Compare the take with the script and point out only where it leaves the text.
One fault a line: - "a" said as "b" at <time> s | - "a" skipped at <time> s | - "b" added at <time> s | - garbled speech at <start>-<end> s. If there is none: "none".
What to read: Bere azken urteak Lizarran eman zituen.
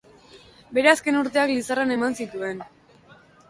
none